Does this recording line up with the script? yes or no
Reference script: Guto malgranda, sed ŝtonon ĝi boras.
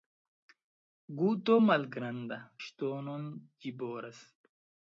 no